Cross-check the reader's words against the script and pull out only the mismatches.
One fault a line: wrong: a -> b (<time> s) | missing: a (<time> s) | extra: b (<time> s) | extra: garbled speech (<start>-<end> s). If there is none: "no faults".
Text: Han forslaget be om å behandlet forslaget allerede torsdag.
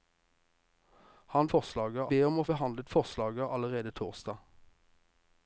no faults